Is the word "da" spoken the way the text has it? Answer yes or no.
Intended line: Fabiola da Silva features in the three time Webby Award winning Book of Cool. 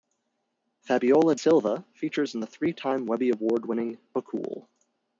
no